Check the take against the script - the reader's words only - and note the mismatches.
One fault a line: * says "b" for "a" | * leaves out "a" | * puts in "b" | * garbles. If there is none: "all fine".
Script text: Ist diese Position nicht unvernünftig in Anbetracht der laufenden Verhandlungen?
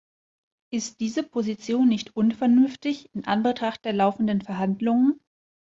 all fine